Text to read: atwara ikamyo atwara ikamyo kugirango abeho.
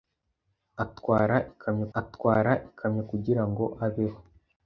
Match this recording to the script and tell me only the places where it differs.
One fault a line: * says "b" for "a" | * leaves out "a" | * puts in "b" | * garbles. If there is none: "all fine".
all fine